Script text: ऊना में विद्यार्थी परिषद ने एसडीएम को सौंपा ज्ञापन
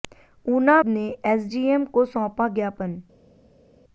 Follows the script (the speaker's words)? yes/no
no